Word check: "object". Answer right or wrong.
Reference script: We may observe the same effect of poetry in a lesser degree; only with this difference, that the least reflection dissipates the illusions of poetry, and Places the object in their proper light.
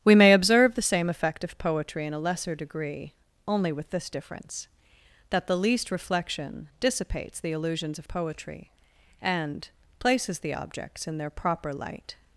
wrong